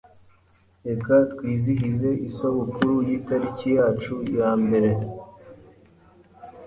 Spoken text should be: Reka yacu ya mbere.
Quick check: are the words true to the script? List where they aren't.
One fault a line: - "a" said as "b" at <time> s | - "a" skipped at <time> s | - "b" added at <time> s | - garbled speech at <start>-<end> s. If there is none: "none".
- "twizihize isabukuru y'itariki" added at 1.3 s